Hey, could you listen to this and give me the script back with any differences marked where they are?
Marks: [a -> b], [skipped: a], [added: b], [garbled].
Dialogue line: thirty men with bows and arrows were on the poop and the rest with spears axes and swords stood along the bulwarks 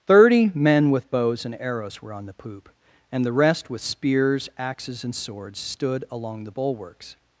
thirty men with bows and arrows were on the poop and the rest with spears axes and swords stood along the bulwarks